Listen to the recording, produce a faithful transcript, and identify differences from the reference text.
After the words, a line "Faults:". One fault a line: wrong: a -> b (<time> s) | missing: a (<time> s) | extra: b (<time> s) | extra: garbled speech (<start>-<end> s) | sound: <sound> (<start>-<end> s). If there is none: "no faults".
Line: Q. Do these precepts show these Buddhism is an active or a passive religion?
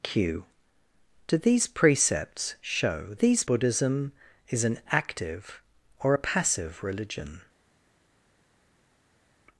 Q. Do these precepts show these Buddhism is an active or a passive religion?
Faults:
no faults